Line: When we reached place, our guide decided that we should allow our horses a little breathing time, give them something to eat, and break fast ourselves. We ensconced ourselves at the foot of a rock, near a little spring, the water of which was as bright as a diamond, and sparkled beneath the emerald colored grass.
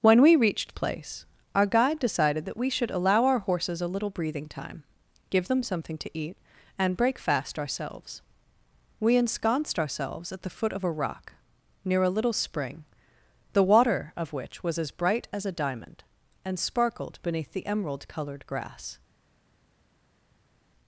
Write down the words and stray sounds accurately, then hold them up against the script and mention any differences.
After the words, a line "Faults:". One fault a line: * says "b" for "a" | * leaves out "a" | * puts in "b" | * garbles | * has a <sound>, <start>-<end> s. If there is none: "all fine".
When we reached place, our guide decided that we should allow our horses a little breathing time, give them something to eat, and break fast ourselves. We ensconced ourselves at the foot of a rock, near a little spring, the water of which was as bright as a diamond, and sparkled beneath the emerald colored grass.
Faults:
all fine